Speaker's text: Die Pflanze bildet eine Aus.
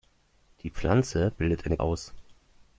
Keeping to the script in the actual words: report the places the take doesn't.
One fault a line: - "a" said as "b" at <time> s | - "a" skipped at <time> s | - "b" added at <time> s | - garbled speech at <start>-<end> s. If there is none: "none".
none